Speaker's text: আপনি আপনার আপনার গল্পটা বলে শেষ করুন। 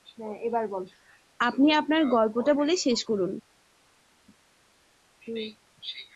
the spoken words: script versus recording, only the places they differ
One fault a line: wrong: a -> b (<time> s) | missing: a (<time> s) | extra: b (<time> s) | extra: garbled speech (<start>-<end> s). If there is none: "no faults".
missing: আপনার (2.0 s)